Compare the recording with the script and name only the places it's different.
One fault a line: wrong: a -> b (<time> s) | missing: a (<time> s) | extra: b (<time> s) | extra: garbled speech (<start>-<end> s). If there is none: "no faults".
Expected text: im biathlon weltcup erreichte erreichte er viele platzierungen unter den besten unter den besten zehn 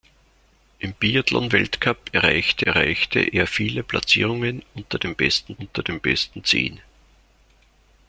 no faults